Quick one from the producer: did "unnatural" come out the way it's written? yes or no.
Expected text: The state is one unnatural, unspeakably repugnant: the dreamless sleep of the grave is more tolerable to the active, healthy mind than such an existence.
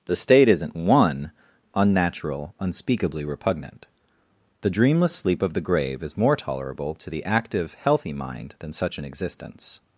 yes